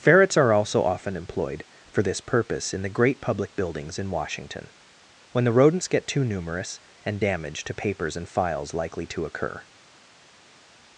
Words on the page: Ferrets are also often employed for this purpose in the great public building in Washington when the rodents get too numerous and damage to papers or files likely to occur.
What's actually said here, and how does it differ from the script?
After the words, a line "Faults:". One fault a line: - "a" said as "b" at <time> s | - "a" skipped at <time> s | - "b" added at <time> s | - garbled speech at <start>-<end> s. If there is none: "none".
Ferrets are also often employed for this purpose in the great public buildings in Washington when the rodents get too numerous and damage to papers and files likely to occur.
Faults:
- "building" said as "buildings" at 3.5 s
- "or" said as "and" at 8.2 s